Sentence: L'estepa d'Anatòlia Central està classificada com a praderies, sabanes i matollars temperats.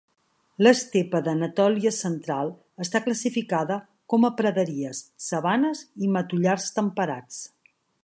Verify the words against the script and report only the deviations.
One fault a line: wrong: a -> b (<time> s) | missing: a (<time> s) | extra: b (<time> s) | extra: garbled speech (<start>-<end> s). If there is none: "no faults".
no faults